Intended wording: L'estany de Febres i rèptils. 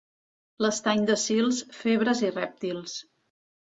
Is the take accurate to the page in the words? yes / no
no